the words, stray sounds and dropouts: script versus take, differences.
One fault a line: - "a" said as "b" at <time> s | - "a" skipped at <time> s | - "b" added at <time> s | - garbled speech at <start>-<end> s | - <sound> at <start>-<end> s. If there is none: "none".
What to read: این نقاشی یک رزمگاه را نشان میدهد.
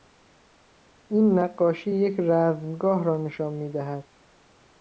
none